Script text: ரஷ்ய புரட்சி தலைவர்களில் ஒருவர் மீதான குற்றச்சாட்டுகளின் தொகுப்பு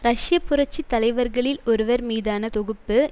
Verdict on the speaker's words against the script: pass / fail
fail